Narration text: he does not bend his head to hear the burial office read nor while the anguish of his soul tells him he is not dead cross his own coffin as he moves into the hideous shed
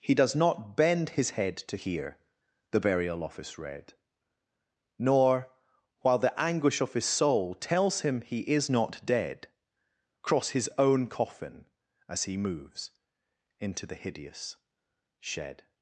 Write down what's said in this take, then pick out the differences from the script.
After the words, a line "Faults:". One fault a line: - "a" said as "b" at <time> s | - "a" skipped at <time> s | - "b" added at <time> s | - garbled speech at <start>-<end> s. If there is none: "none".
he does not bend his head to hear the burial office read nor while the anguish of his soul tells him he is not dead cross his own coffin as he moves into the hideous shed
Faults:
none